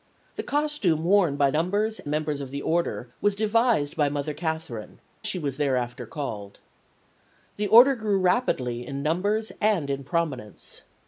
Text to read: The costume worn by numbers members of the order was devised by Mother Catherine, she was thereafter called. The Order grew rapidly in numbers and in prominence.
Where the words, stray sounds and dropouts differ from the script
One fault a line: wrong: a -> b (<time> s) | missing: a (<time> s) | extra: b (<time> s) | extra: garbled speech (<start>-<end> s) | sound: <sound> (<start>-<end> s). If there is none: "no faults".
no faults